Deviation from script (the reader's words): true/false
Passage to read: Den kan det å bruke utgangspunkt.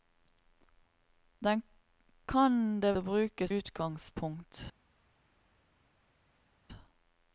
false